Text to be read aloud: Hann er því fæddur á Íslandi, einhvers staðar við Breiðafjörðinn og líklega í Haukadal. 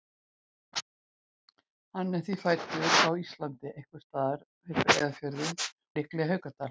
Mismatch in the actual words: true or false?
true